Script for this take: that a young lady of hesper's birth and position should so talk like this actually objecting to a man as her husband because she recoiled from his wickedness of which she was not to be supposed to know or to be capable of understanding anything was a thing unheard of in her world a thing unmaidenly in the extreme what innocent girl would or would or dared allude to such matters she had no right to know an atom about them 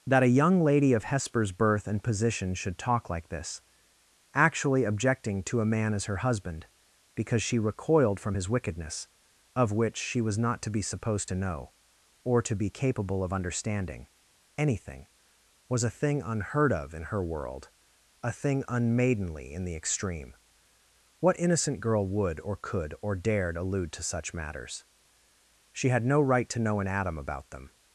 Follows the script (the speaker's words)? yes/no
no